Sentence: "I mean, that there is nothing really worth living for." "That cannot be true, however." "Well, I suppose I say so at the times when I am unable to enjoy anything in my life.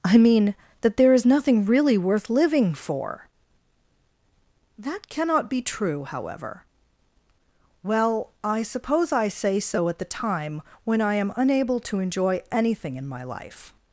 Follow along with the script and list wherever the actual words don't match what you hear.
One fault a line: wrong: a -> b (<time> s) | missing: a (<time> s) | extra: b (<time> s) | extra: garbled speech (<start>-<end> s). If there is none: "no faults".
wrong: times -> time (10.0 s)